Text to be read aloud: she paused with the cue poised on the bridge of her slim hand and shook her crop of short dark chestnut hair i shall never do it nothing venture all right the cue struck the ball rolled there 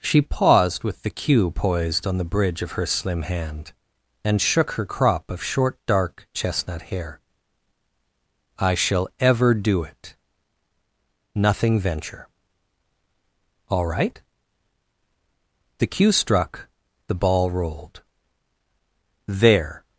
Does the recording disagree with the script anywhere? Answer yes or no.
yes